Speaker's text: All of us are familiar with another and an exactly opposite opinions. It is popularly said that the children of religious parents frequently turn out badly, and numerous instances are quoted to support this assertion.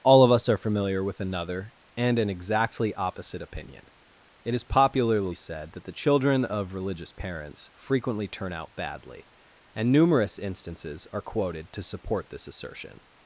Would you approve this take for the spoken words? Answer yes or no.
no